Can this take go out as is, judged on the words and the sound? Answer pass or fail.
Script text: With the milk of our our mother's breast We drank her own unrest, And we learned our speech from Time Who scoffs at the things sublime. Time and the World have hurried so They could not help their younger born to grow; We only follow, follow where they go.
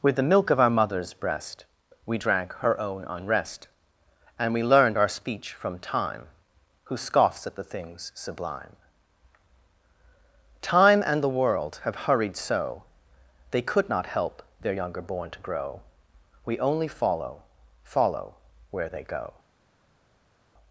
fail